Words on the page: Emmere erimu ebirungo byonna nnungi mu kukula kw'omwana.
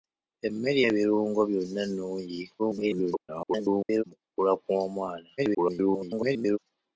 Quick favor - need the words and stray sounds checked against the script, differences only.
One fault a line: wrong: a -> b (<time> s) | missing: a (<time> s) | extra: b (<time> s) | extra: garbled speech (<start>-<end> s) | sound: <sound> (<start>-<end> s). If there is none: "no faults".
missing: erimu (0.8 s)
extra: garbled speech (2.6-4.0 s)
extra: garbled speech (5.4-6.6 s)